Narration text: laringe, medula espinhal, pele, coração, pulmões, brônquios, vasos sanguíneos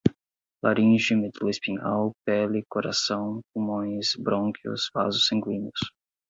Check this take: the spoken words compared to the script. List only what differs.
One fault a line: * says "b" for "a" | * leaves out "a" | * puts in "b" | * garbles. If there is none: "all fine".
all fine